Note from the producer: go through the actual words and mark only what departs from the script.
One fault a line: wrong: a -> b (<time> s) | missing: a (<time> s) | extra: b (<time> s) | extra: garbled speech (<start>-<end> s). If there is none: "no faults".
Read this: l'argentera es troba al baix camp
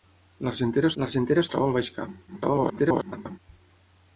extra: l'argentera (1.0 s)
extra: garbled speech (2.3-3.4 s)